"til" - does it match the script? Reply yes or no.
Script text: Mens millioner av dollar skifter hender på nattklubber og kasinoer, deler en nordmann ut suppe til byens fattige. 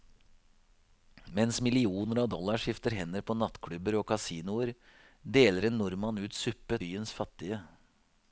no